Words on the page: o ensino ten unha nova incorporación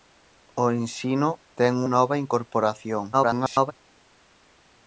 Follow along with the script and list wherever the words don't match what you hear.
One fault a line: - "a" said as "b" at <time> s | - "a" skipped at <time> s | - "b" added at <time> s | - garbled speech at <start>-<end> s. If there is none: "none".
- "unha" skipped at 1.7 s
- garbled speech at 3.1-3.7 s